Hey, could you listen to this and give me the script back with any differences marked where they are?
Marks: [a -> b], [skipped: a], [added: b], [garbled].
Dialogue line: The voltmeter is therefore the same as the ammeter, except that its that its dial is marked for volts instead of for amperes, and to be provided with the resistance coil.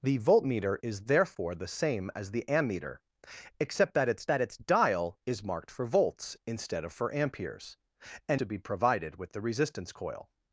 The voltmeter is therefore the same as the ammeter, except that its that its dial is marked for volts instead of for amperes, and to be provided with the resistance coil.